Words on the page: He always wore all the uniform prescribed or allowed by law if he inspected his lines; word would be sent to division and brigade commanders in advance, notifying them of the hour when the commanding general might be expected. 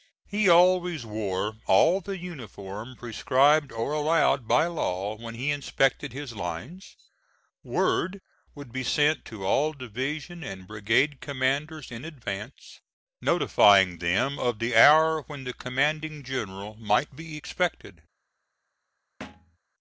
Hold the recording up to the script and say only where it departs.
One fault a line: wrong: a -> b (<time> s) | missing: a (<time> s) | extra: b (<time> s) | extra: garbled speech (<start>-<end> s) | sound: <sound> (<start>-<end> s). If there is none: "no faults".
wrong: if -> when (5.2 s)
extra: all (9.4 s)
sound: thud (19.2-19.6 s)